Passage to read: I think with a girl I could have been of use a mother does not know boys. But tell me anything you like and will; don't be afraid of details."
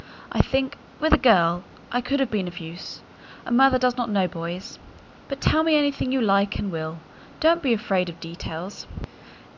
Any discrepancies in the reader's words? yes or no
no